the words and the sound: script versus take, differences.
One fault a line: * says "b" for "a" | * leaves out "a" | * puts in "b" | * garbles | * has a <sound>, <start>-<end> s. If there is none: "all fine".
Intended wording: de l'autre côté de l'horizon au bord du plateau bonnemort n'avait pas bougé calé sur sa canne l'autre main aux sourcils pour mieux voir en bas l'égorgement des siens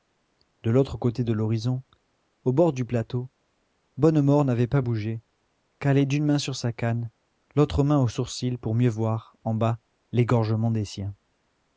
* puts in "d'une main"